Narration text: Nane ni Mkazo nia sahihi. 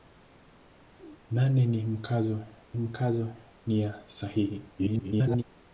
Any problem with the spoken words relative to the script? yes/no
yes